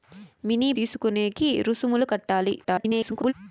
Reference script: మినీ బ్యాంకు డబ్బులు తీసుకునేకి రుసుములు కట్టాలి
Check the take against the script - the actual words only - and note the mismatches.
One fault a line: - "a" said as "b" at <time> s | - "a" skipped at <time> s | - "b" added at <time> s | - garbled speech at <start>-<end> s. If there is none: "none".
- "బ్యాంకు డబ్బులు" skipped at 0.7 s
- garbled speech at 2.6-3.3 s